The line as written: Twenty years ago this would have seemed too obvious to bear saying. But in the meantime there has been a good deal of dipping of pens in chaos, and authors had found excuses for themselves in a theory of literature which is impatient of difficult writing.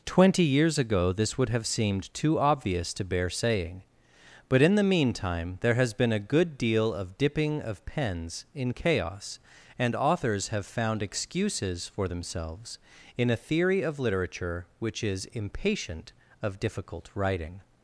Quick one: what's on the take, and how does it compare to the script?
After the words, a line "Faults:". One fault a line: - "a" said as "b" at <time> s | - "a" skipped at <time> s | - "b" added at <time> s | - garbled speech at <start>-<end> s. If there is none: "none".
Twenty years ago this would have seemed too obvious to bear saying. But in the meantime there has been a good deal of dipping of pens in chaos, and authors have found excuses for themselves in a theory of literature which is impatient of difficult writing.
Faults:
- "had" said as "have" at 10.5 s